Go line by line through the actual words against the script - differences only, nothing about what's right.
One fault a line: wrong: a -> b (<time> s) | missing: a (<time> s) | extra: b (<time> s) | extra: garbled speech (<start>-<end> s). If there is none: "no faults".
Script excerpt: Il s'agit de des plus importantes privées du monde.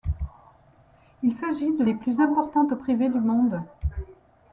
no faults